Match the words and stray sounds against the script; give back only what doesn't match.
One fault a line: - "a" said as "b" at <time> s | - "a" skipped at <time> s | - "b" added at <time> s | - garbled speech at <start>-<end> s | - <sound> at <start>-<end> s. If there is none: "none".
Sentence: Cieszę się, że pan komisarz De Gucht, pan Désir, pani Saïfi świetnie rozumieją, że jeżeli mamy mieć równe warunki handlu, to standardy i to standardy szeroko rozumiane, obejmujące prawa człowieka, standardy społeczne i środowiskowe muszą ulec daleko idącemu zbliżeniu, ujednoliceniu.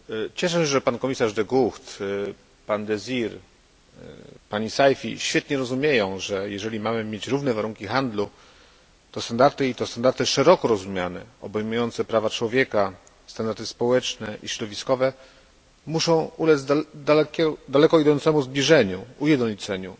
none